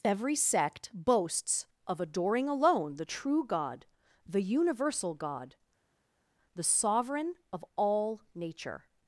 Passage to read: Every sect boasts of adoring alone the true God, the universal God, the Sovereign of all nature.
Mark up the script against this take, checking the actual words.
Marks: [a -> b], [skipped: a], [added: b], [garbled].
Every sect boasts of adoring alone the true God, the universal God, the Sovereign of all nature.